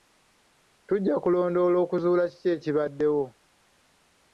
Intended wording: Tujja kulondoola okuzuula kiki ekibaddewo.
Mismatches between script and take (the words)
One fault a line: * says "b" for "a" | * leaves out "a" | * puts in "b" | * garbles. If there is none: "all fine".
all fine